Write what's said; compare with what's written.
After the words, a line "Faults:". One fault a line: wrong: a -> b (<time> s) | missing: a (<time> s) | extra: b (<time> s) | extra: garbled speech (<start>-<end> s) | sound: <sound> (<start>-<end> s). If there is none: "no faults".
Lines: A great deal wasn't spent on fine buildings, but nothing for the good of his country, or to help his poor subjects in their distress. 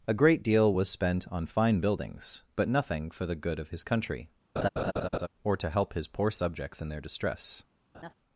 A great deal was spent on fine buildings, but nothing for the good of his country, or to help his poor subjects in their distress.
Faults:
wrong: wasn't -> was (0.7 s)
sound: laugh (4.6-5.3 s)
sound: laugh (7.9-8.1 s)